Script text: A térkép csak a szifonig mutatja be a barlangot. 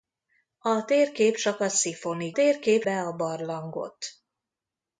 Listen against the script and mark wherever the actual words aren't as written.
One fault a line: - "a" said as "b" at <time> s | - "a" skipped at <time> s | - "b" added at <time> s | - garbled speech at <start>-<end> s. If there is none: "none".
- "mutatja" said as "térkép" at 2.3 s